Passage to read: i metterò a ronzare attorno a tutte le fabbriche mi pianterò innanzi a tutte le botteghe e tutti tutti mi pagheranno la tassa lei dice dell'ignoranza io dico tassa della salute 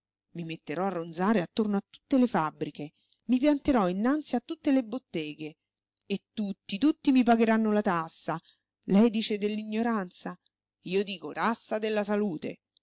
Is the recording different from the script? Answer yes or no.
no